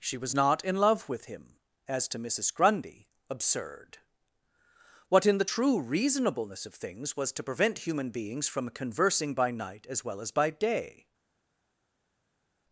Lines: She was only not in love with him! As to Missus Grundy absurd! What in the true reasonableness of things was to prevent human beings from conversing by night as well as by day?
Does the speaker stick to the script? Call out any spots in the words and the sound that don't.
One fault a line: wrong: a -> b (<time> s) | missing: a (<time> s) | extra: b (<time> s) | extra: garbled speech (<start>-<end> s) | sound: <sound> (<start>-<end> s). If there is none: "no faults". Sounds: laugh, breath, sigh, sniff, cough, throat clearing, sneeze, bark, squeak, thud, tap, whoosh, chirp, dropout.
missing: only (0.3 s)